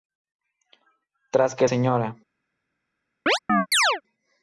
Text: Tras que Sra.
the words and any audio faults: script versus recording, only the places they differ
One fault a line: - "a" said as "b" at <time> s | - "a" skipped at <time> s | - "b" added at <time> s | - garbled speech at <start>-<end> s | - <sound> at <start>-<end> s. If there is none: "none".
- chirp at 3.3-4.0 s